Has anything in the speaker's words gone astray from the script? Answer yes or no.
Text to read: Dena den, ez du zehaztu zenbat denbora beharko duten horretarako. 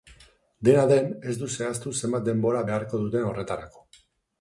no